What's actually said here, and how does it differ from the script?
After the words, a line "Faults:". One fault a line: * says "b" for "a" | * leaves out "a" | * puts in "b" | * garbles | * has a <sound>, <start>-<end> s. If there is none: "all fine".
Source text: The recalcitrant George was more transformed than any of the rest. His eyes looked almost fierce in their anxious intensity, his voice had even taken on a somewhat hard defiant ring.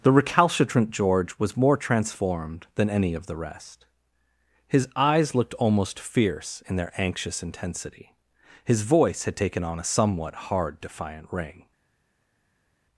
The recalcitrant George was more transformed than any of the rest. His eyes looked almost fierce in their anxious intensity, his voice had taken on a somewhat hard defiant ring.
Faults:
* leaves out "even"